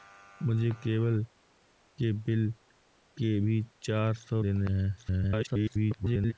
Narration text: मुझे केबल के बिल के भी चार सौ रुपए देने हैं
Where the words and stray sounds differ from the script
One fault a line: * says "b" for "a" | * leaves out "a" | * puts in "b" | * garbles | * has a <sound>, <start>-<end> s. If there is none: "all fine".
* leaves out "रुपए"
* garbles